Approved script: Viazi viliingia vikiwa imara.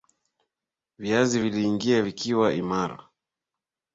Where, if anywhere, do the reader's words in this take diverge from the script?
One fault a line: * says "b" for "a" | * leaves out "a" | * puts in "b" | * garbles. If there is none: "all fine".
all fine